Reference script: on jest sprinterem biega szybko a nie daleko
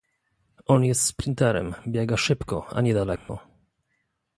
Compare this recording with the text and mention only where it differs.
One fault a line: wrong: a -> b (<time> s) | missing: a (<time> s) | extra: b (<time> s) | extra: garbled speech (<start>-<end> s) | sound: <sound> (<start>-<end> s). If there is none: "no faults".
sound: dropout (3.2-3.3 s)